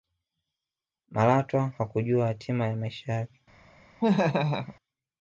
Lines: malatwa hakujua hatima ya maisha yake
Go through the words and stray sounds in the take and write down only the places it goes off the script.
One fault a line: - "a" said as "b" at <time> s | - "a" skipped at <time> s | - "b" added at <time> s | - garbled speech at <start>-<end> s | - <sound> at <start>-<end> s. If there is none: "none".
- laugh at 4.0-4.8 s